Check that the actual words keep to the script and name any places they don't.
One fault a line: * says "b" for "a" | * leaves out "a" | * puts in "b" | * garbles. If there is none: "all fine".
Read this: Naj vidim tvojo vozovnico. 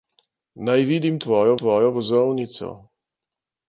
* puts in "tvojo"